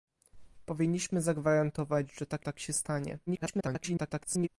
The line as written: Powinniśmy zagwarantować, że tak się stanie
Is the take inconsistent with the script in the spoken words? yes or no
yes